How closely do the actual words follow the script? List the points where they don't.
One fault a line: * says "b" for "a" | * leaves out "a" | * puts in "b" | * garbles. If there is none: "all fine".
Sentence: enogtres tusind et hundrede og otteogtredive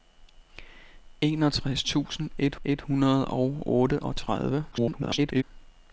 * puts in "et"
* garbles